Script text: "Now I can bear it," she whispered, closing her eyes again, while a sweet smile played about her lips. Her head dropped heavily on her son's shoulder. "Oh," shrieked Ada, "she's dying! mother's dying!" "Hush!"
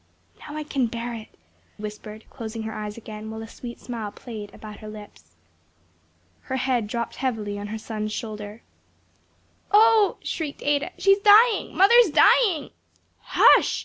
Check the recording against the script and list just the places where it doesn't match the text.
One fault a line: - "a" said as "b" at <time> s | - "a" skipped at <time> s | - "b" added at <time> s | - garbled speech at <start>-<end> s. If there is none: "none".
- "she" skipped at 1.3 s